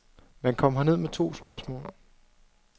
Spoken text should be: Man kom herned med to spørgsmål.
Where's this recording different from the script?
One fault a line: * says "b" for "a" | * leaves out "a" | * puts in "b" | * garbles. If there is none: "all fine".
all fine